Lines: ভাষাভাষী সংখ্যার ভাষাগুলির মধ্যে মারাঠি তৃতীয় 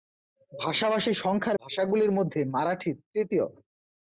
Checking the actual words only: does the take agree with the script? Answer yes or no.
yes